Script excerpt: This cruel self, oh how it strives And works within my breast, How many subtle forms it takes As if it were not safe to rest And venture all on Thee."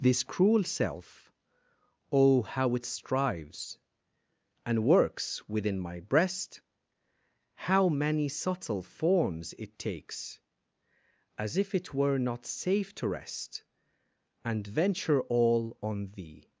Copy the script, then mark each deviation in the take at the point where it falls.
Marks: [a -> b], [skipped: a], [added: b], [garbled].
This cruel self, oh how it strives And works within my breast, How many subtle forms it takes As if it were not safe to rest And venture all on Thee."